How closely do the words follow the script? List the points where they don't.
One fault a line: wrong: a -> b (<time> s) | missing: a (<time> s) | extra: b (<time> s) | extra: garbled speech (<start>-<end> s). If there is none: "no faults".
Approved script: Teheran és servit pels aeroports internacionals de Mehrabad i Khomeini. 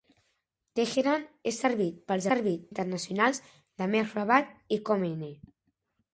wrong: aeroports -> servit (2.3 s)